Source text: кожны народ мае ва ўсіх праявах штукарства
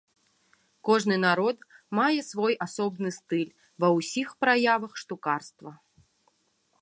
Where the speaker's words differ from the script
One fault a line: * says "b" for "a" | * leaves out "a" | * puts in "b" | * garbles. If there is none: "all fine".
* puts in "свой асобны стыль"